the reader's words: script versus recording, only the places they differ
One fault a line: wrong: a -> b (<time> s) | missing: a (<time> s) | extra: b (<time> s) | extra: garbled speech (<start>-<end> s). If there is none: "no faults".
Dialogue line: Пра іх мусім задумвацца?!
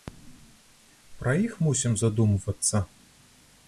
no faults